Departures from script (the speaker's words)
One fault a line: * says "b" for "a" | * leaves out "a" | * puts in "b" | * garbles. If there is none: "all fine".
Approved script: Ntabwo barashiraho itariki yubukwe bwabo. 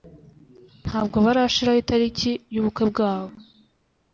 all fine